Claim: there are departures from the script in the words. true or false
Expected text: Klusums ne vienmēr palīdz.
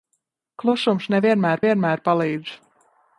true